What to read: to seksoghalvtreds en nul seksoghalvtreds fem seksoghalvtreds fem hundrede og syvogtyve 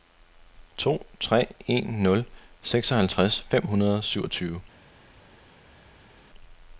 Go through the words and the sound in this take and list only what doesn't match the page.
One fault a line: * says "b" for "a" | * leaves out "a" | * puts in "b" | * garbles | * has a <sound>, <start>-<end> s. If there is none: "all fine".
* says "tre" for "seksoghalvtreds"
* leaves out "seksoghalvtreds fem"